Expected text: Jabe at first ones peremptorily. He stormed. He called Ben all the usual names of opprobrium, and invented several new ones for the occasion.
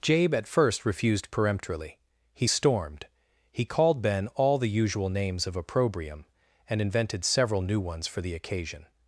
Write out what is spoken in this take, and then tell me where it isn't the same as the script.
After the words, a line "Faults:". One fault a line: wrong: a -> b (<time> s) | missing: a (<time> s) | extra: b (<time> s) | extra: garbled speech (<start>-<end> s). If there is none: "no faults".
Jabe at first refused peremptorily. He stormed. He called Ben all the usual names of opprobrium, and invented several new ones for the occasion.
Faults:
wrong: ones -> refused (0.8 s)